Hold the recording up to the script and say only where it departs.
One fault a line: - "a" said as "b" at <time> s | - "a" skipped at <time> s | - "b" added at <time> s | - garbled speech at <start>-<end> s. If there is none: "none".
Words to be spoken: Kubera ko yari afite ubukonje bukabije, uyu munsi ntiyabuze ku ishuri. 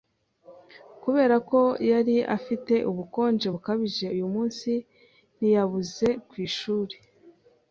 none